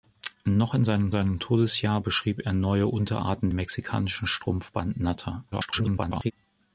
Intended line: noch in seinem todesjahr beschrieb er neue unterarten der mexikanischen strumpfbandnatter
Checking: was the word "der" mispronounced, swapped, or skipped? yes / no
yes